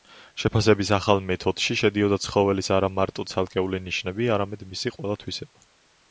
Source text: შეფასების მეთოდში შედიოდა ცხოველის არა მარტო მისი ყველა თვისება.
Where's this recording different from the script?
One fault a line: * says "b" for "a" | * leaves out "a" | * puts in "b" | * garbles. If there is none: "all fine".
* puts in "ახალ"
* puts in "ცალკეული ნიშნები არამედ"